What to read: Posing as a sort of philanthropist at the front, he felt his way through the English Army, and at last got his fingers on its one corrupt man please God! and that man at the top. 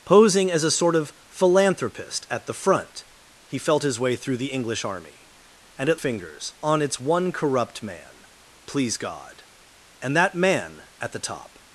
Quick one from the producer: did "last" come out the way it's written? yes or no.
no